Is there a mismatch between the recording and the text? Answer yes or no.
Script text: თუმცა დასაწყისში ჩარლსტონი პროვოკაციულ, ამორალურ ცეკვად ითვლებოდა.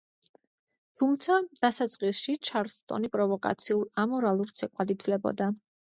no